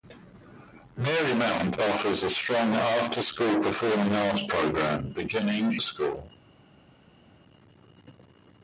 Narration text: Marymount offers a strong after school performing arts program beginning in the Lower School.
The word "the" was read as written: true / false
false